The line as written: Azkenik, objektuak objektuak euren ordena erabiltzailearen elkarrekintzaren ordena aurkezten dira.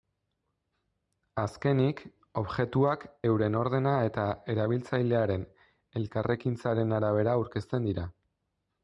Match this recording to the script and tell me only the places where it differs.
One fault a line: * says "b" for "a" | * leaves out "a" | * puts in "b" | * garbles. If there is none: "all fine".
* leaves out "objektuak"
* puts in "eta"
* says "arabera" for "ordena"